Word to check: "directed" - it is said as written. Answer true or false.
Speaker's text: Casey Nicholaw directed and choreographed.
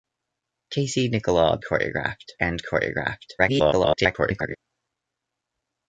false